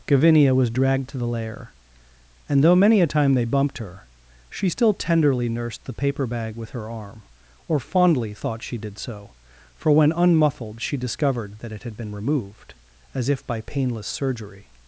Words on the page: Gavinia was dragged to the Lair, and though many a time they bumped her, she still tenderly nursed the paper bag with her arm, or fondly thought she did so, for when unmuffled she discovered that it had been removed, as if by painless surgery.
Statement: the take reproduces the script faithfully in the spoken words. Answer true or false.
true